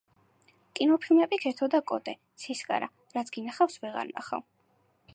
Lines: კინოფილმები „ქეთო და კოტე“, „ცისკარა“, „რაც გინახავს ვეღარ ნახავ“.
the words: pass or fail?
pass